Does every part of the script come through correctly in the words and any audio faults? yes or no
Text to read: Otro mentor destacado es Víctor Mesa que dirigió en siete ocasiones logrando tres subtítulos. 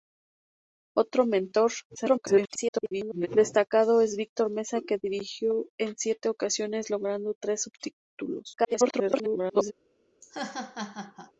no